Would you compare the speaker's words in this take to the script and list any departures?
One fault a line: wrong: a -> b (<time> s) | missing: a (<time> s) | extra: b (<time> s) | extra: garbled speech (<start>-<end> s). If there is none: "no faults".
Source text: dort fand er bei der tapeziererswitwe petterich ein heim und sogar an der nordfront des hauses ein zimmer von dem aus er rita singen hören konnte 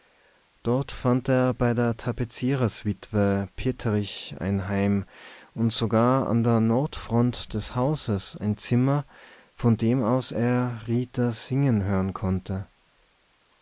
no faults